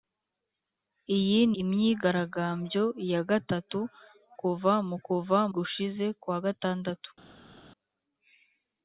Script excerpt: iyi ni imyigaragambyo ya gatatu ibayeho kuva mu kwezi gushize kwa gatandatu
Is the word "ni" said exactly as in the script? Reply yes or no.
no